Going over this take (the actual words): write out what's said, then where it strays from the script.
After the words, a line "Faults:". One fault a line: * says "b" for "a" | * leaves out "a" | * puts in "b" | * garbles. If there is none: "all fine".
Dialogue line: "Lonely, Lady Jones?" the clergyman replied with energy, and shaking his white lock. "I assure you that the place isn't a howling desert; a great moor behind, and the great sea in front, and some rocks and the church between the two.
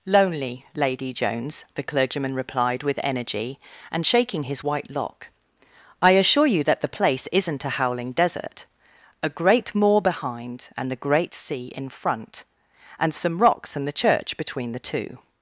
"Lonely, Lady Jones?" the clergyman replied with energy, and shaking his white lock. "I assure you that the place isn't a howling desert; a great moor behind, and the great sea in front, and some rocks and the church between the two.
Faults:
all fine